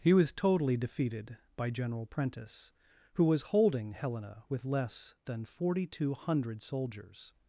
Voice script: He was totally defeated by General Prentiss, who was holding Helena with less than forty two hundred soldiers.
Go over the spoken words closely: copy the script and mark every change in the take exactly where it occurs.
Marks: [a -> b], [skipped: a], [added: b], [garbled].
He was totally defeated by General Prentiss, who was holding Helena with less than forty two hundred soldiers.